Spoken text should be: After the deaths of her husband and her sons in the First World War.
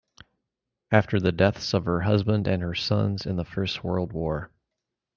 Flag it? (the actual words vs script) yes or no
no